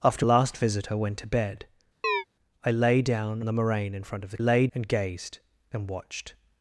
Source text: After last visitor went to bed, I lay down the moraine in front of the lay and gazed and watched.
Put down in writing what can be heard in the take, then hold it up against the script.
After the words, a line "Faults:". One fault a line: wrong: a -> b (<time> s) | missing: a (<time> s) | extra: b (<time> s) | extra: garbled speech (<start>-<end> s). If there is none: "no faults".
After last visitor went to bed, I lay down the moraine in front of the lay and gazed and watched.
Faults:
no faults